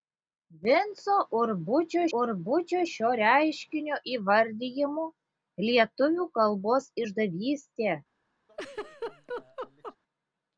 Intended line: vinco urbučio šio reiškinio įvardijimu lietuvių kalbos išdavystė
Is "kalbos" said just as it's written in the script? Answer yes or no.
yes